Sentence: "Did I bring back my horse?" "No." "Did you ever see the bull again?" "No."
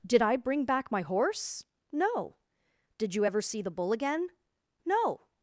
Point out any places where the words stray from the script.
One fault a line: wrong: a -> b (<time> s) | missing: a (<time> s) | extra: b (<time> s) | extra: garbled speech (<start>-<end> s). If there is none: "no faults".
no faults